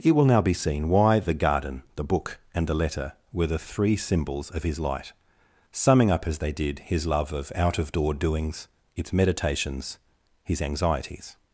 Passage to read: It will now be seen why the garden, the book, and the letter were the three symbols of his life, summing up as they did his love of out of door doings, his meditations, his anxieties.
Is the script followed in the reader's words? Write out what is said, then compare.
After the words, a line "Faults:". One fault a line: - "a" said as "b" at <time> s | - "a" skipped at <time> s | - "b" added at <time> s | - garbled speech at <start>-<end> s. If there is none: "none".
It will now be seen why the garden, the book, and the letter were the three symbols of his light, summing up as they did his love of out of door doings, its meditations, his anxieties.
Faults:
- "life" said as "light" at 4.8 s
- "his" said as "its" at 9.0 s